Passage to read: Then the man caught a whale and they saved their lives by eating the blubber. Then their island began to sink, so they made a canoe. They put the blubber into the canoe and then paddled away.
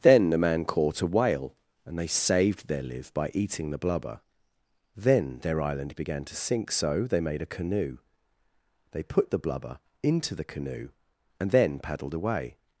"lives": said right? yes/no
no